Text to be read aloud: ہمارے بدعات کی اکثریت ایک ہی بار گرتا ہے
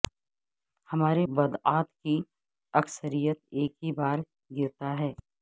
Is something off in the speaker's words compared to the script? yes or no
no